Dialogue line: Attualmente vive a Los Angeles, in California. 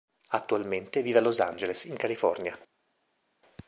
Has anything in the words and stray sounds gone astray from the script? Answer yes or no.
no